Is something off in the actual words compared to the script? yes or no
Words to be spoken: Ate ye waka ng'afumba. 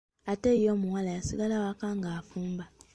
yes